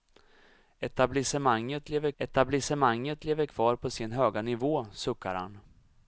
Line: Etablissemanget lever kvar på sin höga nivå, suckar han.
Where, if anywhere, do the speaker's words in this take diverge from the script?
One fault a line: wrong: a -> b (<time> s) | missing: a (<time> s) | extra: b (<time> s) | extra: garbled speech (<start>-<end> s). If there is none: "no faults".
extra: etablissemanget lever (2.2 s)